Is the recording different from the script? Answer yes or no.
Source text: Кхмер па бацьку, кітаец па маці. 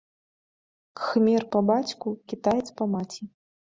no